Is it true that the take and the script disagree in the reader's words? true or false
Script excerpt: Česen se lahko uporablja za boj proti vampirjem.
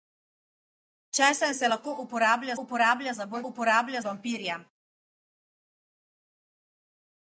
true